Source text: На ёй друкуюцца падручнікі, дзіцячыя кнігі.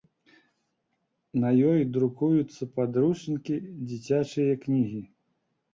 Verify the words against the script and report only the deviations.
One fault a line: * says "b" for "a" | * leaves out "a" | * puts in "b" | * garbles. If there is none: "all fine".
all fine